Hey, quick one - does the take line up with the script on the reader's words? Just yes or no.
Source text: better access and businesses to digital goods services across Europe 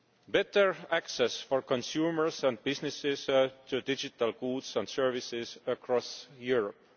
no